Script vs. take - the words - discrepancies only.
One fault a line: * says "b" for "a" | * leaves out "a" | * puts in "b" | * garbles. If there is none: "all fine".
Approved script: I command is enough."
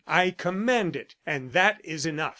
* puts in "it and that"